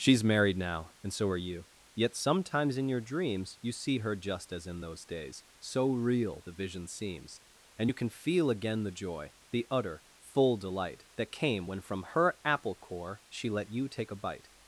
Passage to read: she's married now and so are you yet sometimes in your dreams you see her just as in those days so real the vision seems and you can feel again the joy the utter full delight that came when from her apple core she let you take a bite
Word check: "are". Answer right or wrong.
right